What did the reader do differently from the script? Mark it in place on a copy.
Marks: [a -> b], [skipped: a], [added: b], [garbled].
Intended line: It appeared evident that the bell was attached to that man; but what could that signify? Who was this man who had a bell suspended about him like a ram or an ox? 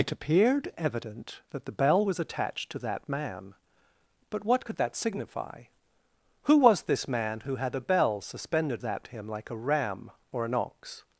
It appeared evident that the bell was attached to that man; but what could that signify? Who was this man who had a bell suspended [about -> that] him like a ram or an ox?